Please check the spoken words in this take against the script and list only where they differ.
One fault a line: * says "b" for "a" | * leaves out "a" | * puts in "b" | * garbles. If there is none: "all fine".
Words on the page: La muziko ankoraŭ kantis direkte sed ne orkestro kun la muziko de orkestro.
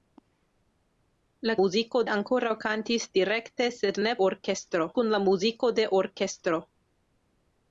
all fine